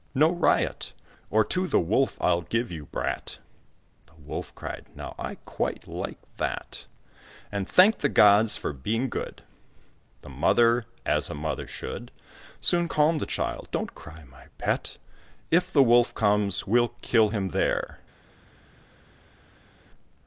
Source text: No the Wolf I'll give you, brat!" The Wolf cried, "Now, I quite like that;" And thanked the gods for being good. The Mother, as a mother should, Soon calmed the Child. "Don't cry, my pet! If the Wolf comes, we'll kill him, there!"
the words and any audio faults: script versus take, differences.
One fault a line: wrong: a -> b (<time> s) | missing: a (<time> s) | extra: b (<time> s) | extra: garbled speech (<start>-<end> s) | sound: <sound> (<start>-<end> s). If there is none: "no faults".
extra: riot Or to (0.3 s)